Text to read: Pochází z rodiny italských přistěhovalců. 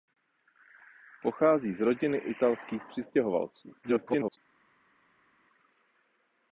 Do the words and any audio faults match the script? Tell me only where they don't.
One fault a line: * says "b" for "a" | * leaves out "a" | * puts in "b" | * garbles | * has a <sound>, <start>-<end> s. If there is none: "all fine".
* garbles